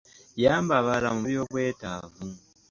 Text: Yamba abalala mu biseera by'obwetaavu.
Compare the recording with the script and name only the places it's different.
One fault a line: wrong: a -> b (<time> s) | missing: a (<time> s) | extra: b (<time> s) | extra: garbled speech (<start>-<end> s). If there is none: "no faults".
missing: biseera (1.2 s)